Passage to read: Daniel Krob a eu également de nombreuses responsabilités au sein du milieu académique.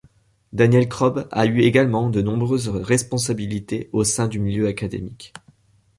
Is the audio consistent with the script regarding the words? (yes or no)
yes